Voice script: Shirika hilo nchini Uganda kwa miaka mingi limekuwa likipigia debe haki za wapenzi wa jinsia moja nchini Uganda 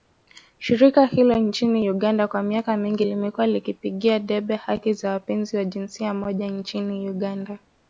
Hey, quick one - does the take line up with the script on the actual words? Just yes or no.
yes